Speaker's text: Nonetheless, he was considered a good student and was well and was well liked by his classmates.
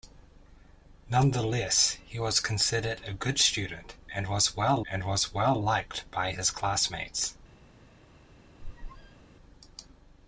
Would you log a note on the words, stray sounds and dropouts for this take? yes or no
yes